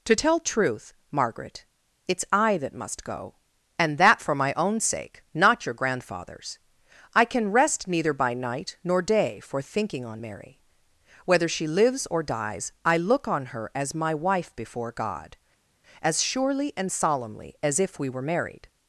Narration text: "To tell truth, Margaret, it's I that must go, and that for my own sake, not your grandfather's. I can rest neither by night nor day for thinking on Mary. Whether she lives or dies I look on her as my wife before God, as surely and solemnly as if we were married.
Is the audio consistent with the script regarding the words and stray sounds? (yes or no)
yes